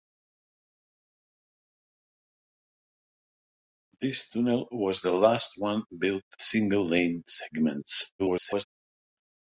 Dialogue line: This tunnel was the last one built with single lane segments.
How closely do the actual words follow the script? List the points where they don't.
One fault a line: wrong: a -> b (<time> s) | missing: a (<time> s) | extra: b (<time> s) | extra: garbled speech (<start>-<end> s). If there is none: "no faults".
missing: with (6.2 s)
extra: garbled speech (8.2-8.7 s)